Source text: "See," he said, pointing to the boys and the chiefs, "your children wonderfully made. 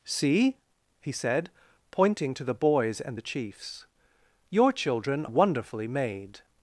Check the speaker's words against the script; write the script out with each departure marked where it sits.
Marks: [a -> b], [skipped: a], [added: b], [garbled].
"See," he said, pointing to the boys and the chiefs, "your children wonderfully made.